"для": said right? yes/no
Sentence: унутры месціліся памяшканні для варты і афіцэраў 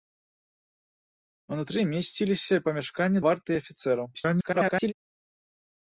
no